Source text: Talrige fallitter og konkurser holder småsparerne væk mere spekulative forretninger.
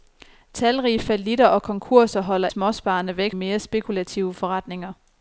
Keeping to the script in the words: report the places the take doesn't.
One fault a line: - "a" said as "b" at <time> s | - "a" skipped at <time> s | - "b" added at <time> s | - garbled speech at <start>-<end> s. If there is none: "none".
none